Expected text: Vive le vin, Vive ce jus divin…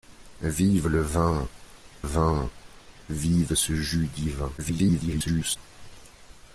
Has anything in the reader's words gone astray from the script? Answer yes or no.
yes